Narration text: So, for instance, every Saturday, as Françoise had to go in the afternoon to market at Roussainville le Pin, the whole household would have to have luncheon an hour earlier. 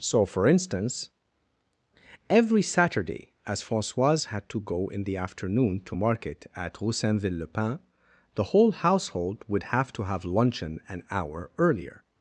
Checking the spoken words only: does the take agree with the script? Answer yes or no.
yes